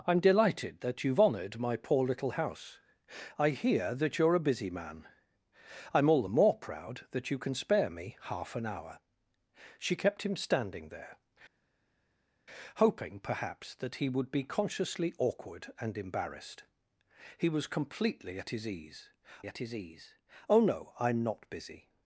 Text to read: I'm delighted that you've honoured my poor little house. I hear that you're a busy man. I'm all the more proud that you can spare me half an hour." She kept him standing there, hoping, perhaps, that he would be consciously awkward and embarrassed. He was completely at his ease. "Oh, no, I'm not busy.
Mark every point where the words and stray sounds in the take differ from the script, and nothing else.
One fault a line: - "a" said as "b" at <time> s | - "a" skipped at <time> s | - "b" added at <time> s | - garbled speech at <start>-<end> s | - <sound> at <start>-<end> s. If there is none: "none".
- "at his ease" added at 19.5 s